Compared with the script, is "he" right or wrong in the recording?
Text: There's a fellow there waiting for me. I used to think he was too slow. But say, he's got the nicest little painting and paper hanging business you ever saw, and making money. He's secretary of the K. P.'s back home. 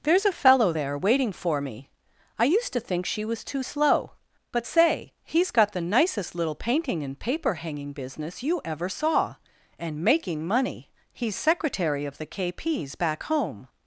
wrong